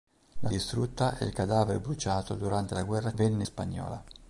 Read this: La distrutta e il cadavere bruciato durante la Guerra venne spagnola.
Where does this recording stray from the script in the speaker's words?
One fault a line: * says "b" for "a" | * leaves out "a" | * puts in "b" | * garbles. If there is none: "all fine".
all fine